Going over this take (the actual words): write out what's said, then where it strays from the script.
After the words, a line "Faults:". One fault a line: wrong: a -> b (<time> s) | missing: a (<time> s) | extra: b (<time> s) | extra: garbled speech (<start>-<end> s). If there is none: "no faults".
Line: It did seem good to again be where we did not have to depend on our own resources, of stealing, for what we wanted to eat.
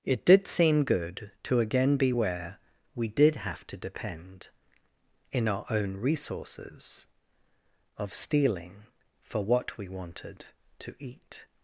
It did seem good to again be where we did have to depend in our own resources, of stealing, for what we wanted to eat.
Faults:
missing: not (3.4 s)
wrong: on -> in (5.3 s)